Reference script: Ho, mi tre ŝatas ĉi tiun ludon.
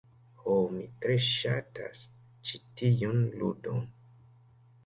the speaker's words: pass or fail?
pass